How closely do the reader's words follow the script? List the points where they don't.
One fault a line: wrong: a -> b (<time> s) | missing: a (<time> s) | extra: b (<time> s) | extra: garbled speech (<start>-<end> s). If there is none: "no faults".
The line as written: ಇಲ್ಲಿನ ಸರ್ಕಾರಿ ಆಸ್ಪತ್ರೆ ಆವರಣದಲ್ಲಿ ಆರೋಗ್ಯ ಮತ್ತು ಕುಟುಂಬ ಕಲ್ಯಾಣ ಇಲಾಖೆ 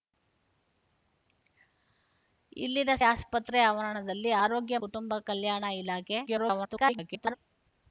missing: ಸರ್ಕಾರಿ (2.9 s)
missing: ಮತ್ತು (4.8 s)
extra: garbled speech (6.3-7.4 s)